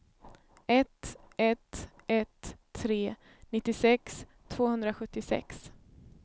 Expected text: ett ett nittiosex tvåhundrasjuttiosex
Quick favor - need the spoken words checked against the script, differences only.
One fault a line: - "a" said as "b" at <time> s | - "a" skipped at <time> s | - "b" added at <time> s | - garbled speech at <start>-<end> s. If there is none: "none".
- "ett tre" added at 2.1 s